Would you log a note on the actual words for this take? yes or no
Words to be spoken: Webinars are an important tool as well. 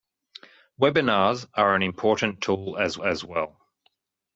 yes